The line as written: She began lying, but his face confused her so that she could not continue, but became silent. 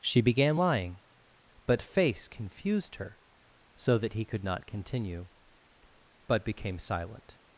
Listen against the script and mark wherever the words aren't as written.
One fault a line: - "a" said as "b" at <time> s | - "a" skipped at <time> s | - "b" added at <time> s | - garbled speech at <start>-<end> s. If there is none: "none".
- "his" skipped at 1.8 s
- "she" said as "he" at 4.1 s